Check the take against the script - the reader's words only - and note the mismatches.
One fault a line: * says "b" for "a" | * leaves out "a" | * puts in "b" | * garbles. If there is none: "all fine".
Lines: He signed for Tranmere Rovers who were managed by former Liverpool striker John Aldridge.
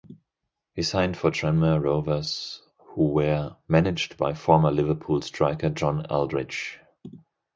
all fine